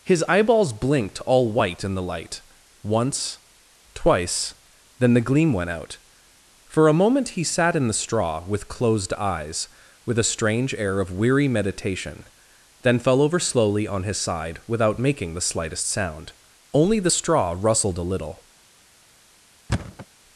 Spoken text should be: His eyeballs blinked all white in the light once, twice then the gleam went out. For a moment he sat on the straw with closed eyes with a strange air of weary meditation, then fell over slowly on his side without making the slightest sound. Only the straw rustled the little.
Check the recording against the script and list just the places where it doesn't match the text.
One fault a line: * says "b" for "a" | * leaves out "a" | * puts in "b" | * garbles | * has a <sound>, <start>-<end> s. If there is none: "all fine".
* says "in" for "on"
* says "a" for "the"
* has a thud, 19.7-20.1 s